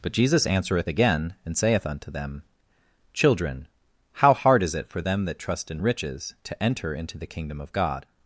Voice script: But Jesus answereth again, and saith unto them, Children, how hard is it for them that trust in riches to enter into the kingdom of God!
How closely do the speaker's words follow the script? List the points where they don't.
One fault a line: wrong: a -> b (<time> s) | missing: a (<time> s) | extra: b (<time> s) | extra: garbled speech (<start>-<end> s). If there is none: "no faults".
no faults